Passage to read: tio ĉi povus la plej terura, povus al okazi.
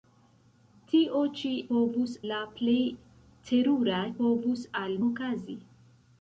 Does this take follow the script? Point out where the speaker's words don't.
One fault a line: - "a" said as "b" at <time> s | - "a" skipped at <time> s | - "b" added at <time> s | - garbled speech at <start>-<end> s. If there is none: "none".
none